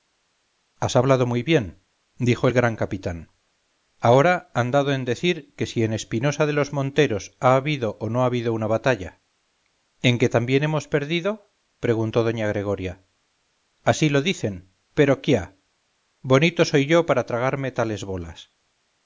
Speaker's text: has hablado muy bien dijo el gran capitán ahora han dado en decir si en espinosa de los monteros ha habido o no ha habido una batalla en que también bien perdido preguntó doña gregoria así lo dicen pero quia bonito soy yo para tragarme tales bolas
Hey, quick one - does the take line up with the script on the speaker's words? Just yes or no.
no